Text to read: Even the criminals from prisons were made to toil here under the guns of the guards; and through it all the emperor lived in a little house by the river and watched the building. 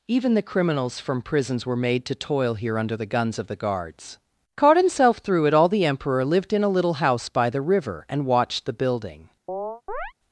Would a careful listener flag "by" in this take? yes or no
no